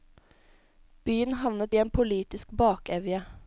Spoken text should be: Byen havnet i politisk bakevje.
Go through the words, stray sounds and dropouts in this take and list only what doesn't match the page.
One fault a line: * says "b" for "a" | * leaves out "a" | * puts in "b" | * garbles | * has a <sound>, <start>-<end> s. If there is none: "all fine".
* puts in "en"